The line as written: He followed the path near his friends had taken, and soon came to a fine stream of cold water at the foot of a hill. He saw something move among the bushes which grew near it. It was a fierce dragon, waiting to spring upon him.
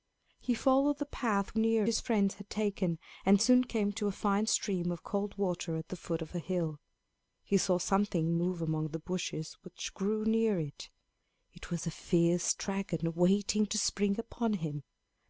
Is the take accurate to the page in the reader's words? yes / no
yes